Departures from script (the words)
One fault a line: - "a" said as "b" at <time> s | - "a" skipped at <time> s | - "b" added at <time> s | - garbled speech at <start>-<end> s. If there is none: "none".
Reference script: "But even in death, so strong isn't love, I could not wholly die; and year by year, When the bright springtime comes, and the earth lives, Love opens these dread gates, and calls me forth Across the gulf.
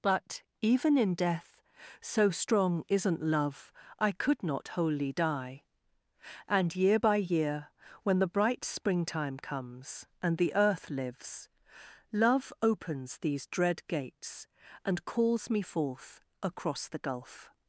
none